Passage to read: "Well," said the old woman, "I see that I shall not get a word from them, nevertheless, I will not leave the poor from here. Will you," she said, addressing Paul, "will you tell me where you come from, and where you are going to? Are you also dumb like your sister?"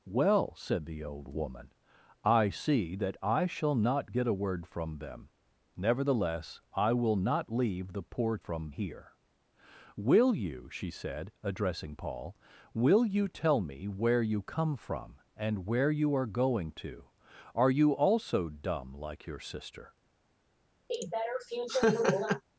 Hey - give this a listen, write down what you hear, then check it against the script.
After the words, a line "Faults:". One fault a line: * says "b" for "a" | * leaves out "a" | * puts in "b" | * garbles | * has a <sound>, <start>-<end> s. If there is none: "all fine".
"Well," said the old woman, "I see that I shall not get a word from them, nevertheless, I will not leave the poor from here. Will you," she said, addressing Paul, "will you tell me where you come from, and where you are going to? Are you also dumb like your sister?"
Faults:
* has a laugh, 20.9-22.4 s